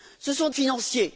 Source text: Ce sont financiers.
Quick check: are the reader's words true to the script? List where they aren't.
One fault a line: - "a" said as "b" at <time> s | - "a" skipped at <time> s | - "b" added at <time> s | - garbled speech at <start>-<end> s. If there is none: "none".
none